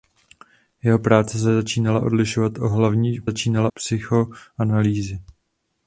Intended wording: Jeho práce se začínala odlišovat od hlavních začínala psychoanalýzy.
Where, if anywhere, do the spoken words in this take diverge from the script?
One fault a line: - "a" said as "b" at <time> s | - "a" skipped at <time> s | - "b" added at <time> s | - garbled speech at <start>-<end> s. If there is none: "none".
none